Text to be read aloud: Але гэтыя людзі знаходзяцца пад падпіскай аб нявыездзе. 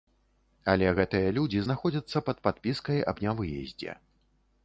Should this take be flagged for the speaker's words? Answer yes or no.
no